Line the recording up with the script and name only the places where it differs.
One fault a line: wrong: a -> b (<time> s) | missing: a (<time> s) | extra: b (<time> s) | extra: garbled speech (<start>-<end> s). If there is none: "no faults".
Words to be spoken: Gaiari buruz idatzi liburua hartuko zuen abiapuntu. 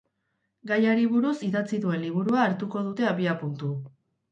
extra: duen (1.9 s)
wrong: zuen -> dute (2.9 s)